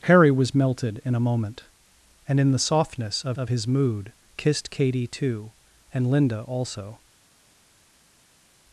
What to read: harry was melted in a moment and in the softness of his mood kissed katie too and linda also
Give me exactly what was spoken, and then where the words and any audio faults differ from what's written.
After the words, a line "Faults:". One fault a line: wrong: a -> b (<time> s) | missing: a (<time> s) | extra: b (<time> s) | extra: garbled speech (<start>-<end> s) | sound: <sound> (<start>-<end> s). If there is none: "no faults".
harry was melted in a moment and in the softness of of his mood kissed katie too and linda also
Faults:
extra: of (3.4 s)